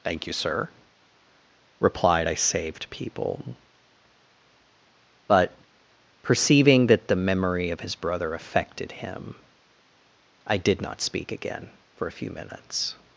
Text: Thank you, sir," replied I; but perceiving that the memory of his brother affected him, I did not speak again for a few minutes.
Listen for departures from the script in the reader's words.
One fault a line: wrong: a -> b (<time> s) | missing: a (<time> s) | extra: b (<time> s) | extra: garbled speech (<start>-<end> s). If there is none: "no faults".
extra: saved people (2.3 s)